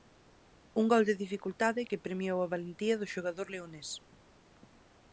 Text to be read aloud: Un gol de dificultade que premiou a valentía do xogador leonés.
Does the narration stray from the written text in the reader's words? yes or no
no